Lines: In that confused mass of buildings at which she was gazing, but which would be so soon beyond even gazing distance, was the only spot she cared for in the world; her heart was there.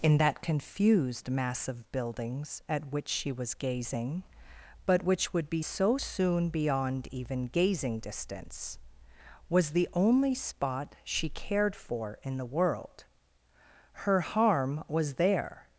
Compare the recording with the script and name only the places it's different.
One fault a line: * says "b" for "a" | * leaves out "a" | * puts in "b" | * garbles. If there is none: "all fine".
* says "harm" for "heart"